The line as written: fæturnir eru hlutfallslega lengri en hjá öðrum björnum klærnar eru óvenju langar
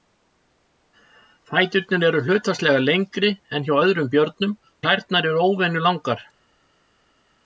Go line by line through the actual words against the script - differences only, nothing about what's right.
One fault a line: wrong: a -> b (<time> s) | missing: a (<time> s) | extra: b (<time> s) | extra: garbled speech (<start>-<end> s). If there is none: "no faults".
no faults